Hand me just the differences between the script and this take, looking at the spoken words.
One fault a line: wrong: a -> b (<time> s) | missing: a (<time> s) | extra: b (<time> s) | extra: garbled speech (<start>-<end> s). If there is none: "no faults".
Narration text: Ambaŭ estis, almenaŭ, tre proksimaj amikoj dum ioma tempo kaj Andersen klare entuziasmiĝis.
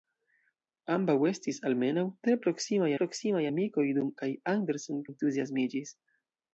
extra: proksimaj (3.0 s)
missing: ioma tempo (4.1 s)
missing: klare (5.0 s)